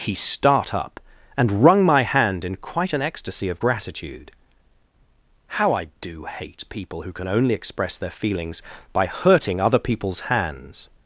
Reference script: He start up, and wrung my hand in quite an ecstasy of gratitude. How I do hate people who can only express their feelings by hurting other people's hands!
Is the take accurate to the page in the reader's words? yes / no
yes